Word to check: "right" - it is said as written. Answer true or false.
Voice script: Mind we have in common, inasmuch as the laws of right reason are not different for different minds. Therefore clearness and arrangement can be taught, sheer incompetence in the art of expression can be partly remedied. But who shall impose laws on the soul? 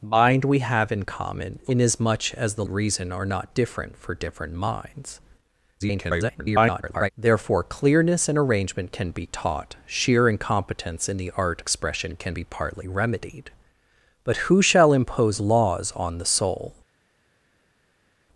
false